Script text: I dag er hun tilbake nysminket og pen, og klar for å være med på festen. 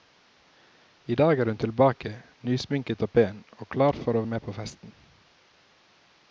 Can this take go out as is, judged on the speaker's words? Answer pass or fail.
fail